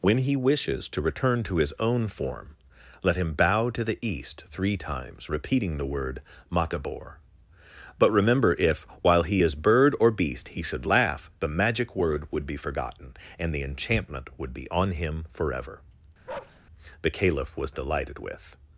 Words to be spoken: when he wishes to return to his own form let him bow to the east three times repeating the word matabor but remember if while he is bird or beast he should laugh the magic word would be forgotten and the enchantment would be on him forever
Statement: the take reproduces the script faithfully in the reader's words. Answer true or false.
false